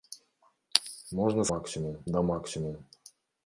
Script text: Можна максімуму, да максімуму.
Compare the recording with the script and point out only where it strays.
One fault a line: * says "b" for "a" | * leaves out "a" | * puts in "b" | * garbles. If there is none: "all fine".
all fine